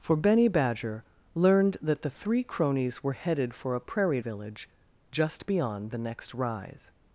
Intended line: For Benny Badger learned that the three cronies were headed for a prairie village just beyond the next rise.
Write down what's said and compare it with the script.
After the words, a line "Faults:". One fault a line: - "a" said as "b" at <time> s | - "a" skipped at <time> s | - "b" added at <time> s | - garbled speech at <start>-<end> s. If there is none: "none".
For Benny Badger learned that the three cronies were headed for a prairie village just beyond the next rise.
Faults:
none